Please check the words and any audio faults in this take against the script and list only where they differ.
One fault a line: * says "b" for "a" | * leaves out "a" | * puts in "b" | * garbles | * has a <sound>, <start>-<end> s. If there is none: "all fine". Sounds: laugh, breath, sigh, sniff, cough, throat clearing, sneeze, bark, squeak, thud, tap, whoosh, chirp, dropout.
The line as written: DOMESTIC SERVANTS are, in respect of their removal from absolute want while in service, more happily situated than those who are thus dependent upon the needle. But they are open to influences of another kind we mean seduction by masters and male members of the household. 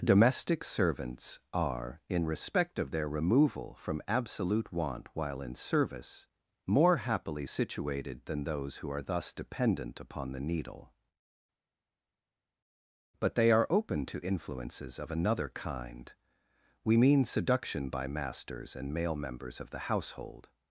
all fine